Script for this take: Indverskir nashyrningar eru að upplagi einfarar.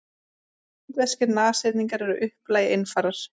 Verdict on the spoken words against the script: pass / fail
pass